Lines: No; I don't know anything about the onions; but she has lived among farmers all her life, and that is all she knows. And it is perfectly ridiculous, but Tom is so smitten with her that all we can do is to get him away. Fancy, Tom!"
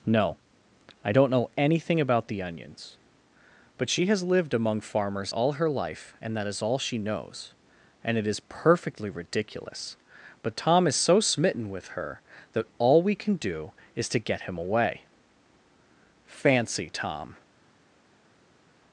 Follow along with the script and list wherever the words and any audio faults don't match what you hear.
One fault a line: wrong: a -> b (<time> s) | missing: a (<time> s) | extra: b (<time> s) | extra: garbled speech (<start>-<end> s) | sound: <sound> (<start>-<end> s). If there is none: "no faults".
no faults